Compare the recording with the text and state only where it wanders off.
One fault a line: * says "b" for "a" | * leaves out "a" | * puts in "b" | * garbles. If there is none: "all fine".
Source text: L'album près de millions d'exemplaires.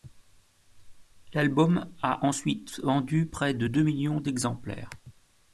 * puts in "a ensuite vendu"
* puts in "deux"